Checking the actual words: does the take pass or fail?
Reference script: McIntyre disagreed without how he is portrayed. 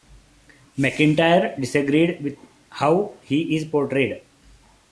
fail